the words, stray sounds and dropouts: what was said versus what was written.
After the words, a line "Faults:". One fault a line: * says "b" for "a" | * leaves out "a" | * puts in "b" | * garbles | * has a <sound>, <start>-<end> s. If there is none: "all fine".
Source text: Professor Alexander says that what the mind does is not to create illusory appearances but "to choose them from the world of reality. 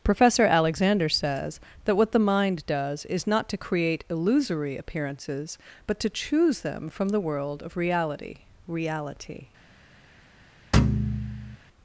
Professor Alexander says that what the mind does is not to create illusory appearances but "to choose them from the world of reality reality.
Faults:
* puts in "reality"
* has a thud, 10.7-11.6 s